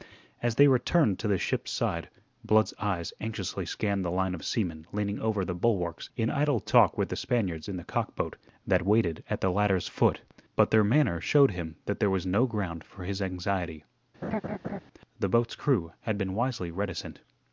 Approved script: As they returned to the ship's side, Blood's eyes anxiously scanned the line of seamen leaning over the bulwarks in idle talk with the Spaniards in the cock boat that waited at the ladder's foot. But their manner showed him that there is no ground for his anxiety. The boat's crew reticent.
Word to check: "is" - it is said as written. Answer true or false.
false